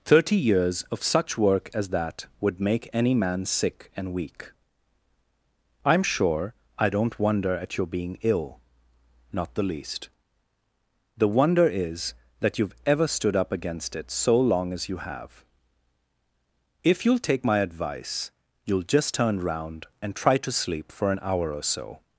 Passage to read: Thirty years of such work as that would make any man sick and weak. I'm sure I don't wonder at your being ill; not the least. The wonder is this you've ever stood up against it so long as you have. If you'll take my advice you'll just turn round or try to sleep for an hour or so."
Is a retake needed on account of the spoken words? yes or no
yes